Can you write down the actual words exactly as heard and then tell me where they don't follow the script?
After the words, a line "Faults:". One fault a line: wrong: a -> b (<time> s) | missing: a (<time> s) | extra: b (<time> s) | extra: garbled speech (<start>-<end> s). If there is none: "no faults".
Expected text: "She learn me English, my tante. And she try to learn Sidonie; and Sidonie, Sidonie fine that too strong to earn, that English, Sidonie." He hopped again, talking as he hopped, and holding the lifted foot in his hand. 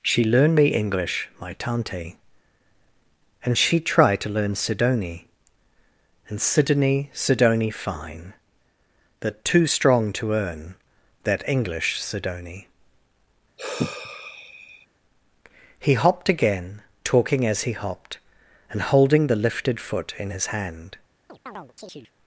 "She learn me English, my tante. And she try to learn Sidonie; and Sidonie, Sidonie fine that too strong to earn, that English, Sidonie." He hopped again, talking as he hopped, and holding the lifted foot in his hand.
Faults:
no faults